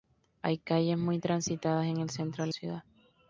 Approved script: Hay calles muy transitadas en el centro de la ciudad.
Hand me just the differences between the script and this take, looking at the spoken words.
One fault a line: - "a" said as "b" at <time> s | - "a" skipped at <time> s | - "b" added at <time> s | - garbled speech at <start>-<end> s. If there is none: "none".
- "la" skipped at 2.5 s